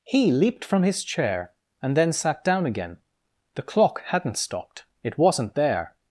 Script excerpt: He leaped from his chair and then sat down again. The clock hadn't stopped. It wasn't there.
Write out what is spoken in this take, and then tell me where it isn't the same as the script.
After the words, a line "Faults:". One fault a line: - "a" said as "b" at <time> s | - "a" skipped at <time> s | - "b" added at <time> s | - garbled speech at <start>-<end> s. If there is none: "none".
He leaped from his chair and then sat down again. The clock hadn't stopped. It wasn't there.
Faults:
none